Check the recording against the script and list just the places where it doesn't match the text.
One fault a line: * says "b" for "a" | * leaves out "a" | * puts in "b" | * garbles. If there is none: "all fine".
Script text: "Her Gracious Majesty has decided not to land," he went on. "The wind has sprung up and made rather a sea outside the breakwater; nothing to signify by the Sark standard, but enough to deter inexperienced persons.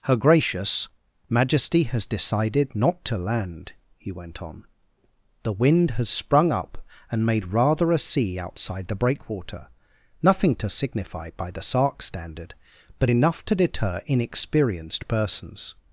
all fine